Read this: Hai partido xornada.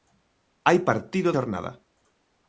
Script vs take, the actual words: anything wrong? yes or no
no